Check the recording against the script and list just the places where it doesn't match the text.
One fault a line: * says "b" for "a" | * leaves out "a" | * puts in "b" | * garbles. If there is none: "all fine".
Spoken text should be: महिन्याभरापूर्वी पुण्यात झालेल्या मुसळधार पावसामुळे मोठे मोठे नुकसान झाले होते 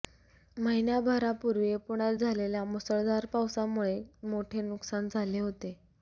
* leaves out "मोठे"